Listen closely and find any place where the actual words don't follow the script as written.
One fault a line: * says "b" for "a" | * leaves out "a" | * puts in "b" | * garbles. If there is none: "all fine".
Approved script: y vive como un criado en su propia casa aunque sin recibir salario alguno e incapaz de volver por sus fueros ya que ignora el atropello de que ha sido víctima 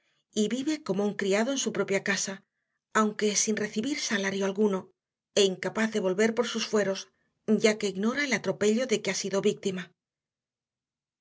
all fine